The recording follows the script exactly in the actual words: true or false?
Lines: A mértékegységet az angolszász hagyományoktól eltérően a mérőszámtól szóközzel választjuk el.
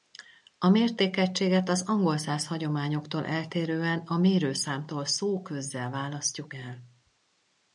true